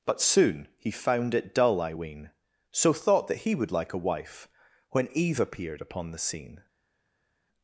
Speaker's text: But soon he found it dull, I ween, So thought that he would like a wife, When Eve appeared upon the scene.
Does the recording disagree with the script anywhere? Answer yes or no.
no